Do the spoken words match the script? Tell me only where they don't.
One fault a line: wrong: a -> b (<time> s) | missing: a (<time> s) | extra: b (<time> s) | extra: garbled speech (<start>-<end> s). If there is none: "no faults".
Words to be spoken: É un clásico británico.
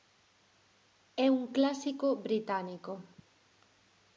no faults